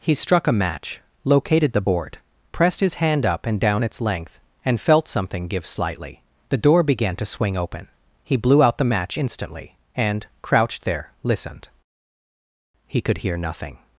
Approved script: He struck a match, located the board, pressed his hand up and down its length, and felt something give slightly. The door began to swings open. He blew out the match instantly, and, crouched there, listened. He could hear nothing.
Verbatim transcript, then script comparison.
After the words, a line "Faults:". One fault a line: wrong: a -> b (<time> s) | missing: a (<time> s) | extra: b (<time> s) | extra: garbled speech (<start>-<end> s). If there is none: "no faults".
He struck a match, located the board, pressed his hand up and down its length, and felt something give slightly. The door began to swing open. He blew out the match instantly, and, crouched there, listened. He could hear nothing.
Faults:
wrong: swings -> swing (7.2 s)